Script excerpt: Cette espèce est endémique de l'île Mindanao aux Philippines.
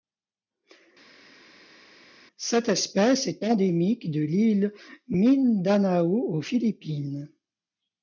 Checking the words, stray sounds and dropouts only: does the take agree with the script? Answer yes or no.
yes